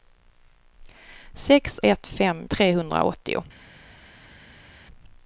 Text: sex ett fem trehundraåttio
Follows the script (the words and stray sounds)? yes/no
yes